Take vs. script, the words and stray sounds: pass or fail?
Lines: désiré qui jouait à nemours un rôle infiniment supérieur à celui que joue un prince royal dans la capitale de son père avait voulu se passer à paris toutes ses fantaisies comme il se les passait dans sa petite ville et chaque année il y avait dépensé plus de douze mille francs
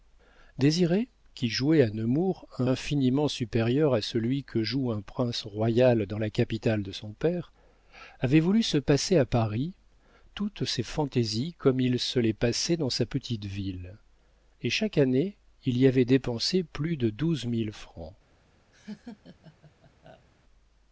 fail